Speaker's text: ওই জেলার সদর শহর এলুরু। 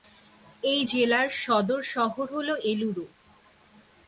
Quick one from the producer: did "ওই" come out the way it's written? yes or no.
no